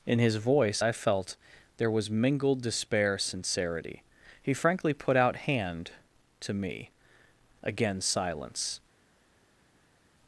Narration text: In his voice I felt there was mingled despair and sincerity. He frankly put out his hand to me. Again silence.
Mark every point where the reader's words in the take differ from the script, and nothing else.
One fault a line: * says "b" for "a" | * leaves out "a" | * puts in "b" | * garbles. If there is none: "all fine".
* leaves out "and"
* leaves out "his"